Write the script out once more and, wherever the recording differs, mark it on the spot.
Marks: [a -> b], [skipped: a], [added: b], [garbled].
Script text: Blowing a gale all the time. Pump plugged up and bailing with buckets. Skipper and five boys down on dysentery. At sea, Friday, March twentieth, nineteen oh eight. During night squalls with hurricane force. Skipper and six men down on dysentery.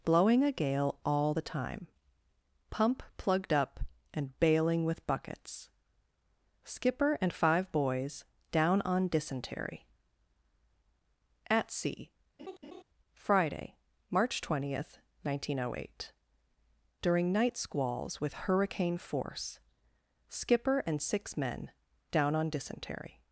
Blowing a gale all the time. Pump plugged up and bailing with buckets. Skipper and five boys down on dysentery. At sea, Friday, March twentieth, nineteen oh eight. During night squalls with hurricane force. Skipper and six men down on dysentery.